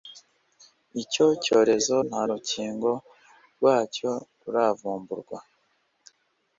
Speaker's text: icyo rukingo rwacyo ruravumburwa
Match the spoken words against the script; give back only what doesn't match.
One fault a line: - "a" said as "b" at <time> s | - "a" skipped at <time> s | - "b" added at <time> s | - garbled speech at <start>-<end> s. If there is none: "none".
- "cyorezo nta" added at 1.4 s